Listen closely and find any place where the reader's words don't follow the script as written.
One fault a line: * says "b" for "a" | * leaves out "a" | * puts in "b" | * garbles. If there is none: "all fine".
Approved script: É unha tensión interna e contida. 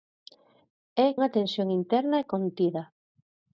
all fine